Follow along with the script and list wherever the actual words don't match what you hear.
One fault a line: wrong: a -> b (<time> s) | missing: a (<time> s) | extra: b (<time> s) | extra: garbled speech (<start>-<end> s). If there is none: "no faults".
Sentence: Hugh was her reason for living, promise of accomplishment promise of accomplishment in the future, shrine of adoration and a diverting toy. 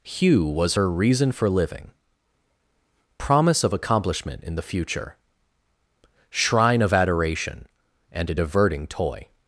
missing: promise of accomplishment (4.4 s)